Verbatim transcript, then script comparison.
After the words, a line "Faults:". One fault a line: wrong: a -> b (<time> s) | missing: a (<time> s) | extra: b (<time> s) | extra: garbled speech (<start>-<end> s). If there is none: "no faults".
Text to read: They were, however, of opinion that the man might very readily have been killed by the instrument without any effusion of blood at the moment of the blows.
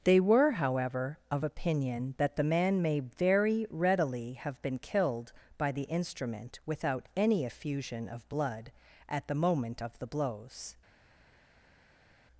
They were, however, of opinion that the man may very readily have been killed by the instrument without any effusion of blood at the moment of the blows.
Faults:
wrong: might -> may (2.8 s)